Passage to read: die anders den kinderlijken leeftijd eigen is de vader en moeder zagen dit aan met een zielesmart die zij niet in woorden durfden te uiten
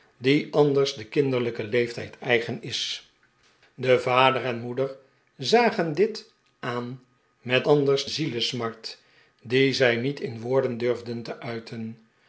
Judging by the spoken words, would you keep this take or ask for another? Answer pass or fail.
fail